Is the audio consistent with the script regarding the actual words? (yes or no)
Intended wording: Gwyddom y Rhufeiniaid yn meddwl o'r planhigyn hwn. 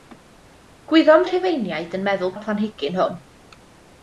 yes